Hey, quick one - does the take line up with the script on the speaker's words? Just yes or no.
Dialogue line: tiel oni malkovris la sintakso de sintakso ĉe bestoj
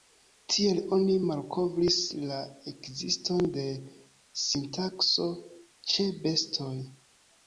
no